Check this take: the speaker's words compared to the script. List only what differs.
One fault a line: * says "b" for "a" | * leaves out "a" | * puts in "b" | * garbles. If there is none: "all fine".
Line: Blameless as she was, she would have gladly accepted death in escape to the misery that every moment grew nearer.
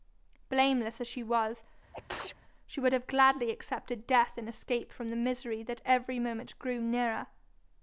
* says "from" for "to"